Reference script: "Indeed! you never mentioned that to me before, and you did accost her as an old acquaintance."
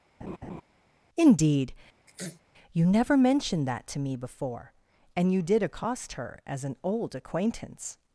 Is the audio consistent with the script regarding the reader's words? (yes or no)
yes